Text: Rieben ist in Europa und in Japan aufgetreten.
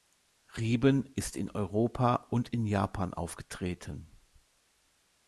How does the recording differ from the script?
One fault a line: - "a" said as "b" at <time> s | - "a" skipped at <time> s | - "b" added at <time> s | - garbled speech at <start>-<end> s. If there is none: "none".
none